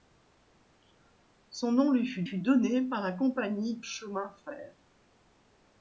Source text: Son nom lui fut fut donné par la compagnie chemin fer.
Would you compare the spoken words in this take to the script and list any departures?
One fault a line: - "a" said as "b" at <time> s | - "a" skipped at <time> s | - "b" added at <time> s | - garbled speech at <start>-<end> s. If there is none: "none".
none